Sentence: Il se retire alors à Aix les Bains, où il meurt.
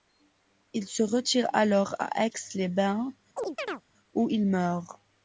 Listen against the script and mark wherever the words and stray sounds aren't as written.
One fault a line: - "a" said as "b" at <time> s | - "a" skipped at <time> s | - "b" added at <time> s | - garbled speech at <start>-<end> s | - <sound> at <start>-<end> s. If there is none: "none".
- chirp at 3.4-3.8 s